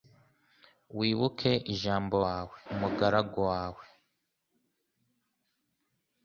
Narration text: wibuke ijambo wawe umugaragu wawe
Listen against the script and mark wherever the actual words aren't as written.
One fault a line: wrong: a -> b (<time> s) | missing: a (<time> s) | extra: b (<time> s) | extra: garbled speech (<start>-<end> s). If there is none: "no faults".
no faults